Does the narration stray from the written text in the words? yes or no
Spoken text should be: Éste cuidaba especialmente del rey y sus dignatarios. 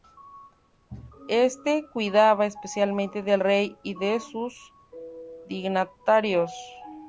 yes